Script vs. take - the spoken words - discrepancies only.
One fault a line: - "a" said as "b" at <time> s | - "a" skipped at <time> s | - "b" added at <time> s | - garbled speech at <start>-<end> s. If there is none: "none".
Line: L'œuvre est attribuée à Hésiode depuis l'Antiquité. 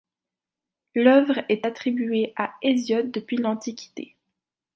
none